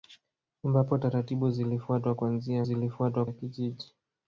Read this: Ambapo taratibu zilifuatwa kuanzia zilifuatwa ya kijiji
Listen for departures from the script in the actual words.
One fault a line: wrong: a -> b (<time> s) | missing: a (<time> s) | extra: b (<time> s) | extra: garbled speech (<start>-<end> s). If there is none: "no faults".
no faults